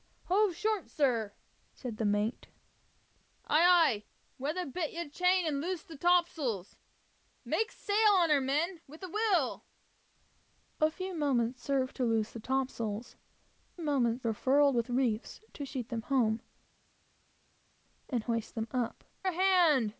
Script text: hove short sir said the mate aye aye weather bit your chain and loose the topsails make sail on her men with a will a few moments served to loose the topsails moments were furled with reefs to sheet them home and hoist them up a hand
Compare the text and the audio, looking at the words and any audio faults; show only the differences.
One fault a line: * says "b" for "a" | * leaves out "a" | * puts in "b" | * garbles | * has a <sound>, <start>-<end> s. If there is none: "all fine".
all fine